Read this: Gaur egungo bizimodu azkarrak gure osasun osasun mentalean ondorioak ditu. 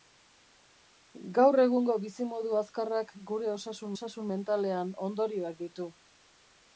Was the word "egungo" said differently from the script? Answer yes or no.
no